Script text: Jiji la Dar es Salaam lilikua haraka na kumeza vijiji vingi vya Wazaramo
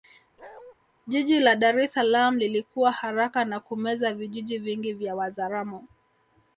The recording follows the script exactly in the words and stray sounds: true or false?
false